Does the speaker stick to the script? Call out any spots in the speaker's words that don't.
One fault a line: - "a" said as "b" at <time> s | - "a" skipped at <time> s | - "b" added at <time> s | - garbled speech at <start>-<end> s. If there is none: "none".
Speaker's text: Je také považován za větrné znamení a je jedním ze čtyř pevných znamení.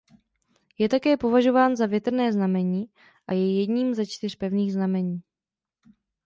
none